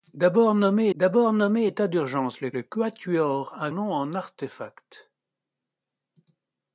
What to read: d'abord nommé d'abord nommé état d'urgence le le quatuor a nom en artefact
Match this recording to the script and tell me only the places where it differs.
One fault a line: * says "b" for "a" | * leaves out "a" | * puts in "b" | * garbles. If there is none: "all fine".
all fine